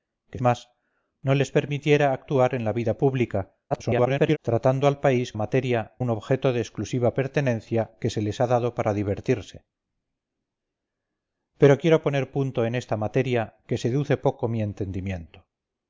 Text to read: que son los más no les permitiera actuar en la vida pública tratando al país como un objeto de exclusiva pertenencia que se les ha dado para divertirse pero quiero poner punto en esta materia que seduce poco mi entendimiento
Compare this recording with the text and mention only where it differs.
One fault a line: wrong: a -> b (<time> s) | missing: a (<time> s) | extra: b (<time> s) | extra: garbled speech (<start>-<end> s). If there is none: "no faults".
missing: son los (0.4 s)
extra: garbled speech (3.7-4.4 s)
wrong: como -> materia (5.3 s)